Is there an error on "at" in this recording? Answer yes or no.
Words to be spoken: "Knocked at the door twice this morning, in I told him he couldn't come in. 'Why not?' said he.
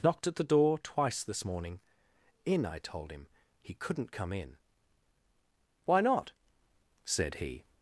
no